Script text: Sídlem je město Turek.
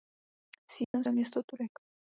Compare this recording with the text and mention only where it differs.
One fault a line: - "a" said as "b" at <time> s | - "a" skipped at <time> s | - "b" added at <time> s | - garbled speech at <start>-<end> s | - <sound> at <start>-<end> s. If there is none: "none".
- dropout at 0.8-0.9 s